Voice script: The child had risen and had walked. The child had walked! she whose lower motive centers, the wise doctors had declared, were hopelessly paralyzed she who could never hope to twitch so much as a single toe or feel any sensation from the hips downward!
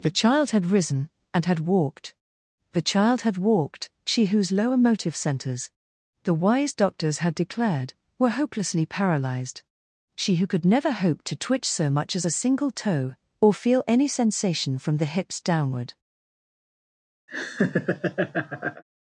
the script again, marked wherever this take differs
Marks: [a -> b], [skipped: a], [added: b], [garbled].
The child had risen and had walked. The child had walked! she whose lower motive centers, the wise doctors had declared, were hopelessly paralyzed she who could never hope to twitch so much as a single toe or feel any sensation from the hips downward!